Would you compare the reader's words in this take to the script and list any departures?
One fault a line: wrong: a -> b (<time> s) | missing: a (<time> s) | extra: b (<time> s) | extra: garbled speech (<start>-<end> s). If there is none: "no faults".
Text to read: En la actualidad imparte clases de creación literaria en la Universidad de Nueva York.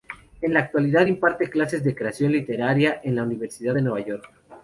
no faults